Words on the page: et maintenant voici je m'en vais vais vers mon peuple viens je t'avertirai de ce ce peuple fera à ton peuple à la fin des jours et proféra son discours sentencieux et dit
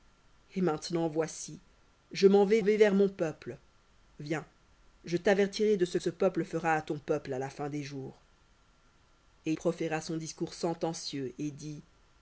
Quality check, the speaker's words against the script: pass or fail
pass